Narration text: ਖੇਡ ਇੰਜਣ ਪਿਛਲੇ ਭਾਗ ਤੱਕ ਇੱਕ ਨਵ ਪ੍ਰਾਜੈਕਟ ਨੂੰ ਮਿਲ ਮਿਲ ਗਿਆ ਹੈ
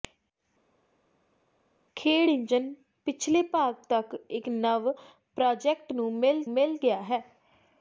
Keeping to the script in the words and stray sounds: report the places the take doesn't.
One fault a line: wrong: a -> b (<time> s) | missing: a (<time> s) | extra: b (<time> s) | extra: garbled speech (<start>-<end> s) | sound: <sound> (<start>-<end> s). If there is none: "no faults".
no faults